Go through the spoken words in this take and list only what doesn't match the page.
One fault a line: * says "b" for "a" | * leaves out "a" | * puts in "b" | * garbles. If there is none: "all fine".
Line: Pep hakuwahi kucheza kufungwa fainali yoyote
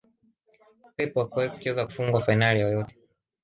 all fine